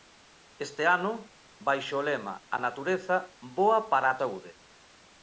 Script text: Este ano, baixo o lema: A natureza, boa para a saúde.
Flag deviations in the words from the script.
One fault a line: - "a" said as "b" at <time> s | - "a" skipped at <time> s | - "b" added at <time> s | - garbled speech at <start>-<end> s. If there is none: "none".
none